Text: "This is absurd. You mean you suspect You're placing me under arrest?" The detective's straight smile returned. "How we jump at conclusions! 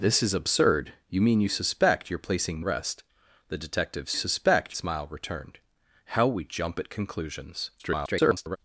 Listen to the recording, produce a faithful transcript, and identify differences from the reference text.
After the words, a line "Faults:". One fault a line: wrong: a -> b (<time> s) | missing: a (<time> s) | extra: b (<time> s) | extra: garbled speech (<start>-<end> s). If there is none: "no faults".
"This is absurd. You mean you suspect You're placing arrest?" The detective's suspect smile returned. "How we jump at conclusions! [garbled]
Faults:
missing: me under (2.6 s)
wrong: straight -> suspect (4.1 s)
extra: garbled speech (7.8-8.6 s)